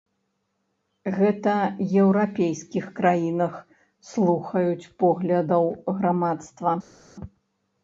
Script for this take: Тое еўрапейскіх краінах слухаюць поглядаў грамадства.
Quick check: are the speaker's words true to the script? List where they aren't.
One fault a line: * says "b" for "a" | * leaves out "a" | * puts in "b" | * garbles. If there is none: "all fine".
* says "Гэта" for "Тое"